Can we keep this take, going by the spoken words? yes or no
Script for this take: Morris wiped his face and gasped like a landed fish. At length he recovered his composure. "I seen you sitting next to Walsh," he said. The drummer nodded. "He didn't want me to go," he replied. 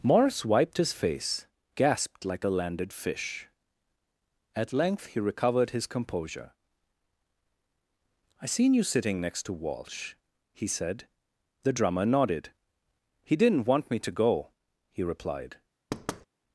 no